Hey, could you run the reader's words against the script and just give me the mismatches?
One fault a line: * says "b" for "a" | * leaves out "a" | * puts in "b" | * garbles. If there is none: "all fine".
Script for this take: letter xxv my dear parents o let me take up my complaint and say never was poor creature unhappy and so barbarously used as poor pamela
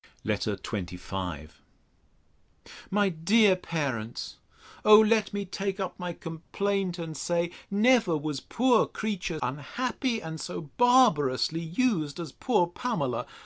all fine